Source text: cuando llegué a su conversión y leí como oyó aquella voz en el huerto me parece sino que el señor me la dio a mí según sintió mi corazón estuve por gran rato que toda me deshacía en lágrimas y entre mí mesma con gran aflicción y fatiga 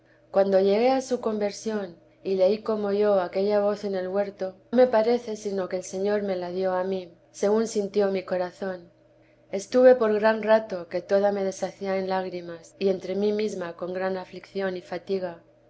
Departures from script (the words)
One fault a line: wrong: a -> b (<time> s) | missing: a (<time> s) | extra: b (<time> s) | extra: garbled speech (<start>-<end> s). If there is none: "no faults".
no faults